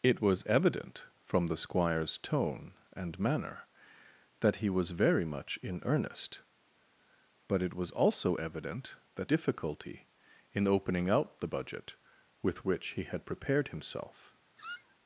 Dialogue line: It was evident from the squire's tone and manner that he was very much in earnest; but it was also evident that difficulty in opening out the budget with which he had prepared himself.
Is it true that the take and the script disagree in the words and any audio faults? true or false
true